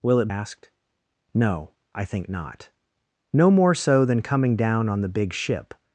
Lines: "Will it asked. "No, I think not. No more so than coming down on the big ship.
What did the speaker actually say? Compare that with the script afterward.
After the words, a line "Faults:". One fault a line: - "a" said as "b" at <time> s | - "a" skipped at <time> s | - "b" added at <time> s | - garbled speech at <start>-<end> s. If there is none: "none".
"Will it asked. "No, I think not. No more so than coming down on the big ship.
Faults:
none